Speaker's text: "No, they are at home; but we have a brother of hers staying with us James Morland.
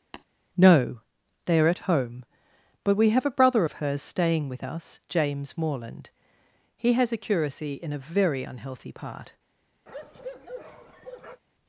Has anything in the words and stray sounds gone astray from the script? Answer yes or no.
yes